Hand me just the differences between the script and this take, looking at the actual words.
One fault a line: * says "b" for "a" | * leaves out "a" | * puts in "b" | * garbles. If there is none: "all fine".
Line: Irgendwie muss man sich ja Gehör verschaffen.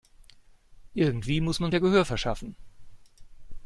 * leaves out "sich"